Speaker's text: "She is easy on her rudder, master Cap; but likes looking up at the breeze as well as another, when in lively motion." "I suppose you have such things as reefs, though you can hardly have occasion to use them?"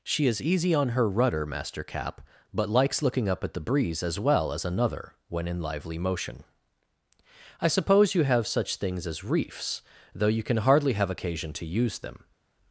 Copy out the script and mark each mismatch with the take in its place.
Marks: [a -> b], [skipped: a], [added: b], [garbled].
"She is easy on her rudder, master Cap; but likes looking up at the breeze as well as another, when in lively motion." "I suppose you have such things as reefs, though you can hardly have occasion to use them?"